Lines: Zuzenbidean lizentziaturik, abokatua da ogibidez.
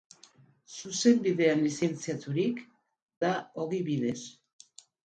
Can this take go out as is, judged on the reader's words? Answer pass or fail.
fail